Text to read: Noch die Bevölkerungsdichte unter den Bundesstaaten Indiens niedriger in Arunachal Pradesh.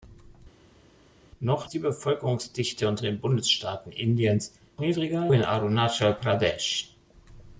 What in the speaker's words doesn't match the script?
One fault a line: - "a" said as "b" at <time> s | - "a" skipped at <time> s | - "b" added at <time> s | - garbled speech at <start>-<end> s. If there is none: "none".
none